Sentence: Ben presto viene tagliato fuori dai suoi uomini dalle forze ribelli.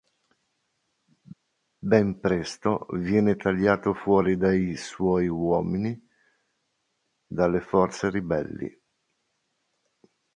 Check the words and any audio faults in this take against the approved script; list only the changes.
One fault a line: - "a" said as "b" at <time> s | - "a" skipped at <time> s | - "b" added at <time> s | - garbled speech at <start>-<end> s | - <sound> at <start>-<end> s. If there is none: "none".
none